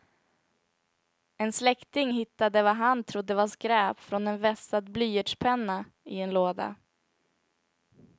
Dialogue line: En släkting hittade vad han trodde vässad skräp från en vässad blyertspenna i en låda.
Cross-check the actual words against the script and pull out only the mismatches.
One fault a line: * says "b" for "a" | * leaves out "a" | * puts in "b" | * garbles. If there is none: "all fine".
* says "var" for "vässad"